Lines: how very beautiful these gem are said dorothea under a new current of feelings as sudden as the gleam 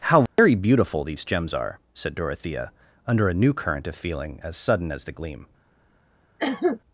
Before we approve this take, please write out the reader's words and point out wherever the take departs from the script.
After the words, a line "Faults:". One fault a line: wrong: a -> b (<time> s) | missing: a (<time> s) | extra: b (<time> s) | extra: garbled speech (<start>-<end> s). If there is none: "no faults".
how very beautiful these gems are said dorothea under a new current of feeling as sudden as the gleam
Faults:
wrong: gem -> gems (1.2 s)
wrong: feelings -> feeling (4.0 s)